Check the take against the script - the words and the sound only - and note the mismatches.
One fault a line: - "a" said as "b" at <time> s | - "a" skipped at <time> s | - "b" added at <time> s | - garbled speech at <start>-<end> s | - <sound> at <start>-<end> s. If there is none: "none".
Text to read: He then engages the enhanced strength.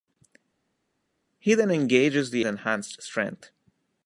none